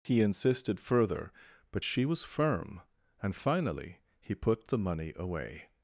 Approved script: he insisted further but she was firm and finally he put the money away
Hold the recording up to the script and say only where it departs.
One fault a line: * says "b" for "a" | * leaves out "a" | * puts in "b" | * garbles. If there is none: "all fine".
all fine